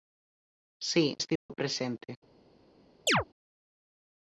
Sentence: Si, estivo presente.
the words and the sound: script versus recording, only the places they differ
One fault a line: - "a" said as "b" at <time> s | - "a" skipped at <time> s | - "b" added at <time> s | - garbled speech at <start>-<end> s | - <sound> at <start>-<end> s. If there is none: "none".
- dropout at 1.4-1.5 s
- chirp at 3.1-3.2 s